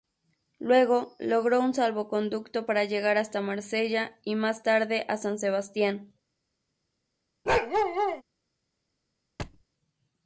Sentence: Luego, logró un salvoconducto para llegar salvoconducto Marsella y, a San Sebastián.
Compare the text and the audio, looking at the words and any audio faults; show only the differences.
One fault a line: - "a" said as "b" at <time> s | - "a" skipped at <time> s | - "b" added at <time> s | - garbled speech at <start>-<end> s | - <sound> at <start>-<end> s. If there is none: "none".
- "salvoconducto" said as "hasta" at 3.2 s
- "más tarde" added at 4.4 s
- bark at 7.5-8.2 s
- thud at 9.4-9.6 s